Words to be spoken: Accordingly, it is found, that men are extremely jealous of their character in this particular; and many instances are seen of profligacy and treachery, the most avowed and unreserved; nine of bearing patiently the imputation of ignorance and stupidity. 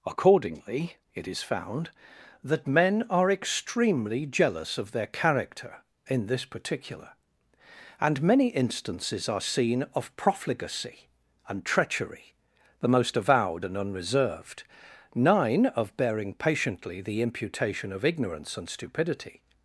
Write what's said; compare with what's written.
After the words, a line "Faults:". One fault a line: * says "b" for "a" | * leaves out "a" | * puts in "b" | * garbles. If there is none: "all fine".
Accordingly, it is found, that men are extremely jealous of their character in this particular; and many instances are seen of profligacy and treachery, the most avowed and unreserved; nine of bearing patiently the imputation of ignorance and stupidity.
Faults:
all fine